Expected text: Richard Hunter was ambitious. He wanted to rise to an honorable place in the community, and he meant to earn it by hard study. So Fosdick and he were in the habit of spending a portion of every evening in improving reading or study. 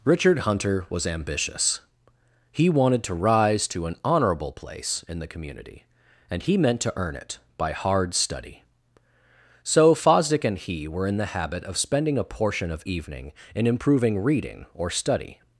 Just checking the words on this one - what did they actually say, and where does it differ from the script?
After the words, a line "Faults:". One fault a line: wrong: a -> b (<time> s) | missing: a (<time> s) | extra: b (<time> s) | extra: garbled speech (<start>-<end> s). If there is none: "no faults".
Richard Hunter was ambitious. He wanted to rise to an honorable place in the community, and he meant to earn it by hard study. So Fosdick and he were in the habit of spending a portion of evening in improving reading or study.
Faults:
missing: every (12.8 s)